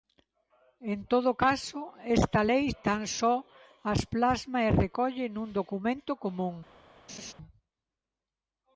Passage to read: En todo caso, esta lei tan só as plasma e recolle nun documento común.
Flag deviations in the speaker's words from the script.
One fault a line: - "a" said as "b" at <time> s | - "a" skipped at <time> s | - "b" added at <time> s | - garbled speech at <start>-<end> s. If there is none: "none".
none